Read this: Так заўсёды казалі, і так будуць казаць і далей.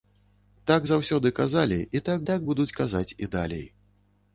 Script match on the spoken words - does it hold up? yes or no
no